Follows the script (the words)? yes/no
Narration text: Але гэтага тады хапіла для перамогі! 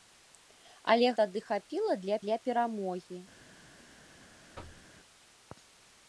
no